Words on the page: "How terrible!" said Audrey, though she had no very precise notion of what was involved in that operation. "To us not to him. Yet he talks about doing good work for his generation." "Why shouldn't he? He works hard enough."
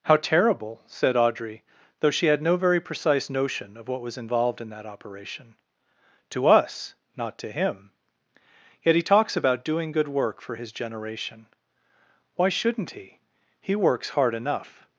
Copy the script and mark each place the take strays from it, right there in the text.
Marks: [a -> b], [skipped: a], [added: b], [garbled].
"How terrible!" said Audrey, though she had no very precise notion of what was involved in that operation. "To us not to him. Yet he talks about doing good work for his generation." "Why shouldn't he? He works hard enough."